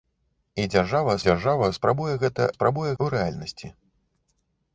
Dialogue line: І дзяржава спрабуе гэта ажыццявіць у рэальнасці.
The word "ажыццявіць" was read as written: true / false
false